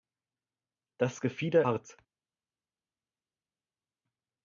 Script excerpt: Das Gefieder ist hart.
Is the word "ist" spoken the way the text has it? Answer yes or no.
no